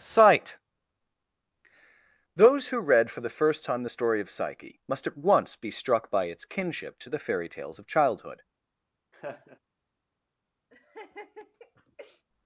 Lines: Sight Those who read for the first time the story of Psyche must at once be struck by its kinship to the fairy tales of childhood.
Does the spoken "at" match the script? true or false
true